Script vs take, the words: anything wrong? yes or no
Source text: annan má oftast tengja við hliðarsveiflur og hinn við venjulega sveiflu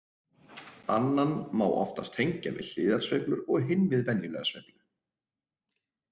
no